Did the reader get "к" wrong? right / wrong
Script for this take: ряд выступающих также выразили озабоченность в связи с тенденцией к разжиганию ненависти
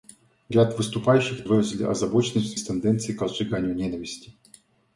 right